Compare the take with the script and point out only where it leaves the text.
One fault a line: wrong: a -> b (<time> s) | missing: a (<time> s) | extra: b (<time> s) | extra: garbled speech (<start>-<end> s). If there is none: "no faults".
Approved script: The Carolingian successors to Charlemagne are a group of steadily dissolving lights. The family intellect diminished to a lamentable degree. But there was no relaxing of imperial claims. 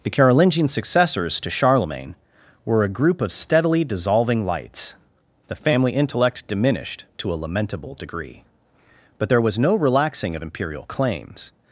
wrong: are -> were (2.6 s)